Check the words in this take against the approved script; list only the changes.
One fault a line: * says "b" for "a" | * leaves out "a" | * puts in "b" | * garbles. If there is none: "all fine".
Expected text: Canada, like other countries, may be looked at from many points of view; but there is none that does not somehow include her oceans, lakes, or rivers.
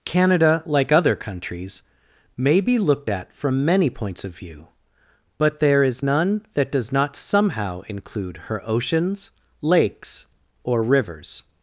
all fine